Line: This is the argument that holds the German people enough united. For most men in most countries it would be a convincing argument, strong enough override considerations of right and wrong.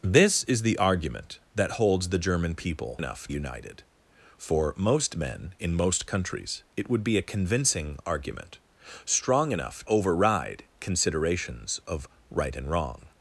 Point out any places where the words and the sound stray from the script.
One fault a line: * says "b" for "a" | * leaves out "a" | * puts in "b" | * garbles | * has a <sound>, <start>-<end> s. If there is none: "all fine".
all fine